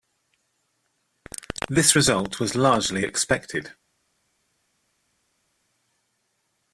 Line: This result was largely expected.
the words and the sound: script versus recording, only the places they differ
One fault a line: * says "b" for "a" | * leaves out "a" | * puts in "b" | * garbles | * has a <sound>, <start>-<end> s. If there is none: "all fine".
all fine